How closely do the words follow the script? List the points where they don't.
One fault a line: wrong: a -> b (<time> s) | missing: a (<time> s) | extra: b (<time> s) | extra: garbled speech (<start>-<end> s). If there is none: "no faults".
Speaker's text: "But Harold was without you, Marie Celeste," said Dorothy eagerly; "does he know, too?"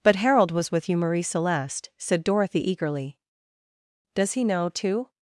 wrong: without -> with (0.7 s)